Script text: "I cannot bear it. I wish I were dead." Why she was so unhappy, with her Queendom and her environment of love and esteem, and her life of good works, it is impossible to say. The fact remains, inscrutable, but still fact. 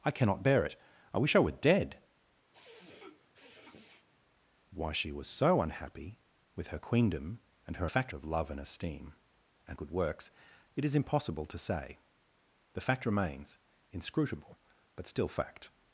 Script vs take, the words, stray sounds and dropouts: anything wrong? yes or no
yes